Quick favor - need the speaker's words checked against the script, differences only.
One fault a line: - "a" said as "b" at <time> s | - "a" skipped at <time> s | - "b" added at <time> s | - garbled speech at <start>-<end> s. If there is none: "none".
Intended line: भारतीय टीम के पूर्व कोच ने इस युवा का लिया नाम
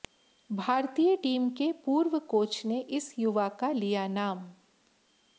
none